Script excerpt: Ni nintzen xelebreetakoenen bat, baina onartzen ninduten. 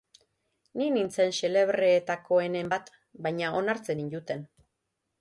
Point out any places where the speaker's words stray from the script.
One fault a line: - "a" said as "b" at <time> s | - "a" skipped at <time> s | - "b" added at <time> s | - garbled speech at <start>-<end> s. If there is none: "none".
none